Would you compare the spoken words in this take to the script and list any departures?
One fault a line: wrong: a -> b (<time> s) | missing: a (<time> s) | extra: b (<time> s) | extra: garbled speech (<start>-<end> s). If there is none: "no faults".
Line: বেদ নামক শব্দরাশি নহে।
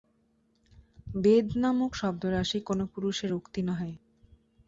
extra: কোন পুরুষের উক্তি (2.6 s)